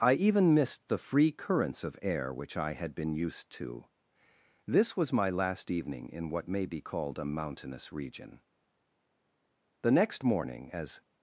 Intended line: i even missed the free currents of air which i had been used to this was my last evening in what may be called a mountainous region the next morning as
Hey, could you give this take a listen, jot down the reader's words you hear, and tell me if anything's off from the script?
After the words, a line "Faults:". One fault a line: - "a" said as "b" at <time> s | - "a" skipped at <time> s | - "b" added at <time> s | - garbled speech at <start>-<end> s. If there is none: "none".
i even missed the free currents of air which i had been used to this was my last evening in what may be called a mountainous region the next morning as
Faults:
none